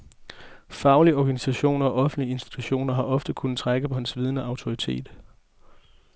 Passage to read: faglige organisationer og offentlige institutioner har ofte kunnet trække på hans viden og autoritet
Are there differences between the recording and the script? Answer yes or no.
no